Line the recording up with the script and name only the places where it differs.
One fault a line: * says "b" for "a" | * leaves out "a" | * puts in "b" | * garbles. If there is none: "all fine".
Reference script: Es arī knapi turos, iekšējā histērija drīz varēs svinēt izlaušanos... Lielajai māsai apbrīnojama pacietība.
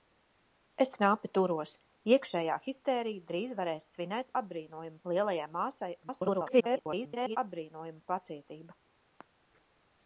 * leaves out "arī"
* says "apbrīnojama" for "izlaušanos"
* garbles